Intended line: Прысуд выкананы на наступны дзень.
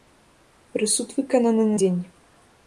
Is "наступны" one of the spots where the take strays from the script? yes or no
yes